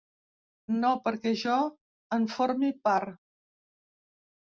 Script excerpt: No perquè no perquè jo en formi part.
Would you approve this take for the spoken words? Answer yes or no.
no